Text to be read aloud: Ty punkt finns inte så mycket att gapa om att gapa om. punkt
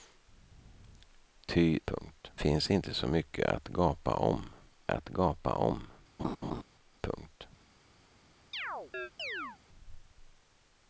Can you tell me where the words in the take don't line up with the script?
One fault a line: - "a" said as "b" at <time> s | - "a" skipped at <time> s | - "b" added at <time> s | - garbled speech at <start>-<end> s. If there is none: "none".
none